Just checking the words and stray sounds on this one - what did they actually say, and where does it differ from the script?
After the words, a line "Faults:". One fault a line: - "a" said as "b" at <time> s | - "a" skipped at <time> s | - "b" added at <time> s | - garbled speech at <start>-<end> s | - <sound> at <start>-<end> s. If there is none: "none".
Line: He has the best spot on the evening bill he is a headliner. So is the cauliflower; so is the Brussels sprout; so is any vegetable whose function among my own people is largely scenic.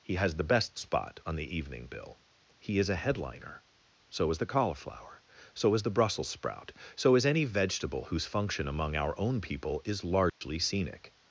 He has the best spot on the evening bill he is a headliner. So is the cauliflower; so is the Brussels sprout; so is any vegetable whose function among our own people is largely scenic.
Faults:
- "my" said as "our" at 8.9 s
- dropout at 10.3-10.4 s